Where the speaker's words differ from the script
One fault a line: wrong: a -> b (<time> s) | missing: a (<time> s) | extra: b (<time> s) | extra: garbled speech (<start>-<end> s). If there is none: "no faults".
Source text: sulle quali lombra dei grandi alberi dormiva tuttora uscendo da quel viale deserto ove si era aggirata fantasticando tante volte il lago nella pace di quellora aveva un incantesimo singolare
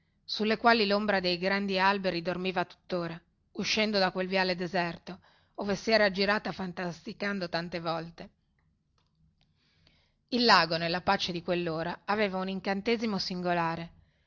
no faults